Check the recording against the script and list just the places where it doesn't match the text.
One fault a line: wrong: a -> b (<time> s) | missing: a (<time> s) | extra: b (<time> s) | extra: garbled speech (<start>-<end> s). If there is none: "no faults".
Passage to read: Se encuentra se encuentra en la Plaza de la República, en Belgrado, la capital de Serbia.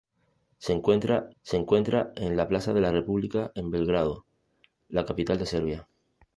no faults